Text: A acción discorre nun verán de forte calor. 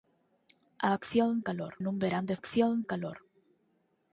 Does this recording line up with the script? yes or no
no